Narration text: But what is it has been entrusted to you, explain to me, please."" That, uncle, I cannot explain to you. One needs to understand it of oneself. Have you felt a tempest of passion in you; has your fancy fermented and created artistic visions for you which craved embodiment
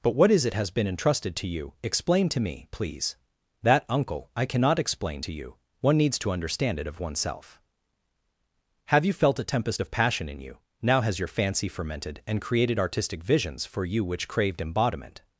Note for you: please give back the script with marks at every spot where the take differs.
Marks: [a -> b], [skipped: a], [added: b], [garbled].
But what is it has been entrusted to you, explain to me, please."" That, uncle, I cannot explain to you. One needs to understand it of oneself. Have you felt a tempest of passion in you; [added: now] has your fancy fermented and created artistic visions for you which craved embodiment